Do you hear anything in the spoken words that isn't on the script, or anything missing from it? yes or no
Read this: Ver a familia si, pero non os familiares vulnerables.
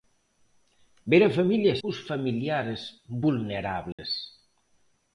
yes